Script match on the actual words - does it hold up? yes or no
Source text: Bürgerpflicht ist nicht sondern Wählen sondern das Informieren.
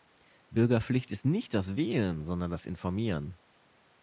no